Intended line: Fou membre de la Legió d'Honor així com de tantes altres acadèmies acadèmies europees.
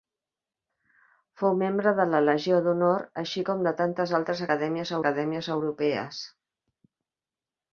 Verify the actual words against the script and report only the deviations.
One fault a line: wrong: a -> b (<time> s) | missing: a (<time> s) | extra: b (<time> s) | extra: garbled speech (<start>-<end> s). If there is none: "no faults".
no faults